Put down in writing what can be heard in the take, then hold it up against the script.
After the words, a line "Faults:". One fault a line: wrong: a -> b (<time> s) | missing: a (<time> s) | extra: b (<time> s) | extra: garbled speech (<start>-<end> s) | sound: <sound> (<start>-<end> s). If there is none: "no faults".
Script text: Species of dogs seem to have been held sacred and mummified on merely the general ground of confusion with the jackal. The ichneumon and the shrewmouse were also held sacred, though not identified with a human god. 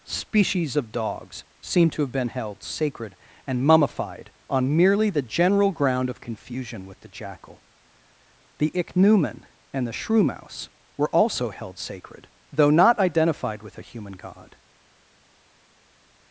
Species of dogs seem to have been held sacred and mummified on merely the general ground of confusion with the jackal. The ichneumon and the shrewmouse were also held sacred, though not identified with a human god.
Faults:
no faults